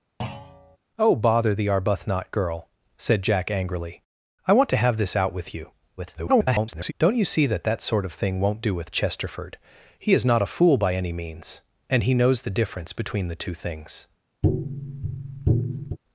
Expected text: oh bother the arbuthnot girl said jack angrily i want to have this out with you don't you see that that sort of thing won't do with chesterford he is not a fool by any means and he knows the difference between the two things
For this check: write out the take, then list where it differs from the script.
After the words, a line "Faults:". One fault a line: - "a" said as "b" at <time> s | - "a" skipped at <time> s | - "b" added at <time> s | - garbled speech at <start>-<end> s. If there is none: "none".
oh bother the arbuthnot girl said jack angrily i want to have this out with you [garbled] don't you see that that sort of thing won't do with chesterford he is not a fool by any means and he knows the difference between the two things
Faults:
- garbled speech at 6.0-6.9 s